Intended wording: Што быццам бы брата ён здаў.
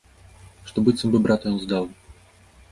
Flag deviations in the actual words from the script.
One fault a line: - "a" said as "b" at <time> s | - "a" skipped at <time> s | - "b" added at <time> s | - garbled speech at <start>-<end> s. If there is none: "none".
none